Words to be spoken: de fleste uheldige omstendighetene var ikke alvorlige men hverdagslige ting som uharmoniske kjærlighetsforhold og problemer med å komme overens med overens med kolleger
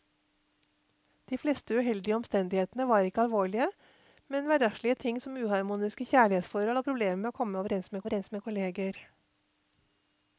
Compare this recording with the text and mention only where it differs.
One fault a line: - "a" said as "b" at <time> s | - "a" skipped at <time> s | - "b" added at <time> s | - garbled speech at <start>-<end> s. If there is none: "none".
none